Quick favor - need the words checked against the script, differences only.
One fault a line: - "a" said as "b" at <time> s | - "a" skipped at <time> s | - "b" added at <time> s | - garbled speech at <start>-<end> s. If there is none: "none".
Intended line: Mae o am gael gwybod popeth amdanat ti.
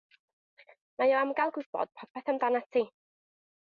none